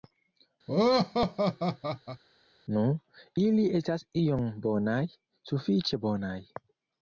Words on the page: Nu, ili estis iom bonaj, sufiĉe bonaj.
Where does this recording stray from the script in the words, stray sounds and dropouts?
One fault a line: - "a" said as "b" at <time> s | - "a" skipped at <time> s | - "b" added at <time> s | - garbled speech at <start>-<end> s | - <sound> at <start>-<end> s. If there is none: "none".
- laugh at 0.7-2.2 s
- "estis" said as "estas" at 3.8 s